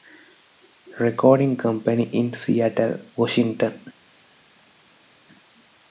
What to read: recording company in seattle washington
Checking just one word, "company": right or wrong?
right